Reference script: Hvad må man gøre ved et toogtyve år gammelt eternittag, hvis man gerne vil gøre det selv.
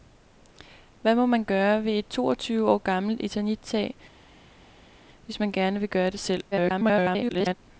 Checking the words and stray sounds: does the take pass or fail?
fail